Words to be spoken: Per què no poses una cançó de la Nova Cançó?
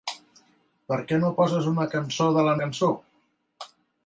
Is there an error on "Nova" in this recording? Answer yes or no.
yes